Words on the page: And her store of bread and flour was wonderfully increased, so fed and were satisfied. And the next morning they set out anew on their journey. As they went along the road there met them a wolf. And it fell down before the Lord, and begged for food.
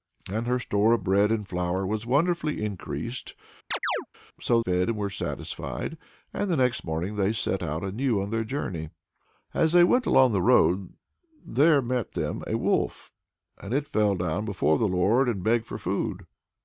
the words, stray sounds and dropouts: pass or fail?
fail